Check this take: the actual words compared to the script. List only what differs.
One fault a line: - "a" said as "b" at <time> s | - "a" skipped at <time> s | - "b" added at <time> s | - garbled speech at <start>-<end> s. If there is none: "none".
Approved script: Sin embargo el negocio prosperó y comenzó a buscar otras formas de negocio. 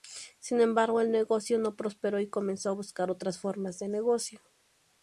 - "no" added at 1.6 s